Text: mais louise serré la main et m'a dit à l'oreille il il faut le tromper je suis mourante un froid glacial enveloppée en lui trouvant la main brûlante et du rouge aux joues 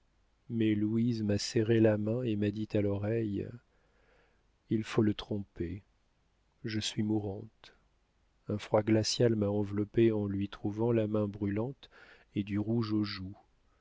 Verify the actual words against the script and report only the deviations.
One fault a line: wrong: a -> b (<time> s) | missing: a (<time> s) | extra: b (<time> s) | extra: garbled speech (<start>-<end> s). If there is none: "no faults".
extra: m'a (1.2 s)
missing: il (4.8 s)
extra: m'a (9.3 s)